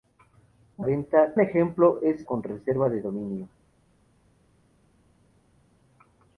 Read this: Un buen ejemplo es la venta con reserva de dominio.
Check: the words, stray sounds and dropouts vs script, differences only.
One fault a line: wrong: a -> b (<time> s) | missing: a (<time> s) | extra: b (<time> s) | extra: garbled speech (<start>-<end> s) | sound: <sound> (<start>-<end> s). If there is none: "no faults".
wrong: buen -> venta (0.8 s)
missing: la venta (2.3 s)